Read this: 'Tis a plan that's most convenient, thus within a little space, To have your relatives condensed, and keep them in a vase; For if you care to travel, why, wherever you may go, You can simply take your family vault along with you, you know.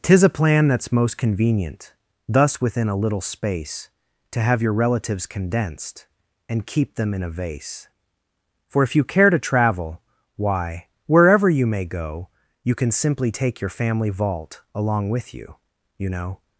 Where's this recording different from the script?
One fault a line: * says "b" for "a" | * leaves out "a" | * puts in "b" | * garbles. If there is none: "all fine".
all fine